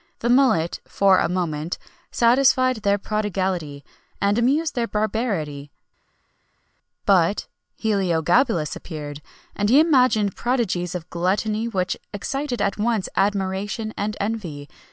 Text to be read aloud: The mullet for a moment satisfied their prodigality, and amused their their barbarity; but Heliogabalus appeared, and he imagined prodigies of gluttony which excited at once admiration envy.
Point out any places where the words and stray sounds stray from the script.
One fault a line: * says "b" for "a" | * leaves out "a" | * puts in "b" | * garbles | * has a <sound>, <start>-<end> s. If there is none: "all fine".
* leaves out "their"
* puts in "and"